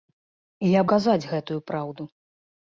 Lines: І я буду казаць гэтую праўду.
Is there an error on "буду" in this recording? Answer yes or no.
yes